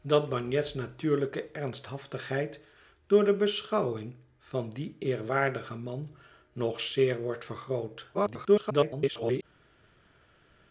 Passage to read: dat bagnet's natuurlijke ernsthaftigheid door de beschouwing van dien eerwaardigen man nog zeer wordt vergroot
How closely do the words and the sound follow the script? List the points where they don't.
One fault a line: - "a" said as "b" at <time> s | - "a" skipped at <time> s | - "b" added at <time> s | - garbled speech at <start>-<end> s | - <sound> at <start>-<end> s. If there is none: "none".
- garbled speech at 8.1-9.4 s